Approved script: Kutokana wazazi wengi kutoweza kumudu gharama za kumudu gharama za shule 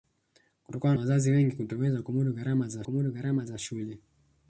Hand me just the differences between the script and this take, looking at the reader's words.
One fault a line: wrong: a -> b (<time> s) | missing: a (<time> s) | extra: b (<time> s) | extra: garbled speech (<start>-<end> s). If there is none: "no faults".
no faults